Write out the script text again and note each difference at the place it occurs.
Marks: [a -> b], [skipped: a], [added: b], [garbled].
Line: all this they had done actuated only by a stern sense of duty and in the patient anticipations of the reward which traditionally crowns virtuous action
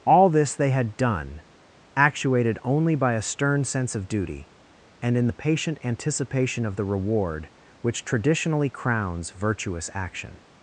all this they had done actuated only by a stern sense of duty and in the patient [anticipations -> anticipation] of the reward which traditionally crowns virtuous action